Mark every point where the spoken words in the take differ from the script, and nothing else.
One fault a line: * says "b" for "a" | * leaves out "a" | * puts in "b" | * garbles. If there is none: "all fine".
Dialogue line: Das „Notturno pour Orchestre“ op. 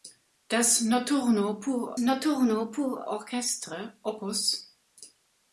* puts in "notturno pour"